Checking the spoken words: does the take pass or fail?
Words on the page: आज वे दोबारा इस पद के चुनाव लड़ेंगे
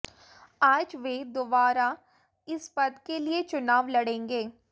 fail